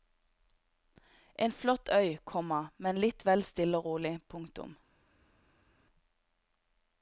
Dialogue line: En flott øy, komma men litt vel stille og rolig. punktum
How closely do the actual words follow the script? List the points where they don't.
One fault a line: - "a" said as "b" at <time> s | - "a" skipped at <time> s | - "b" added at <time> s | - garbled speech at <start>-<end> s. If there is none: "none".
none